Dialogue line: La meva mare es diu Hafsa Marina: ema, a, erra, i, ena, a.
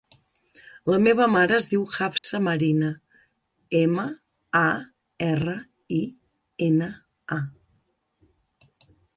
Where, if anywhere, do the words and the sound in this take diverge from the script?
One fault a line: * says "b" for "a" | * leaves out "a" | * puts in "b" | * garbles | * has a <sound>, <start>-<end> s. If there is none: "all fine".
* has a dropout, 2.2-2.2 s